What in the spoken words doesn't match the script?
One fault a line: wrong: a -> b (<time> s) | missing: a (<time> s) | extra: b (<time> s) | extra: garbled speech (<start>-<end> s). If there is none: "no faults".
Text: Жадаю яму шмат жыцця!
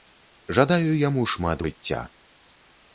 no faults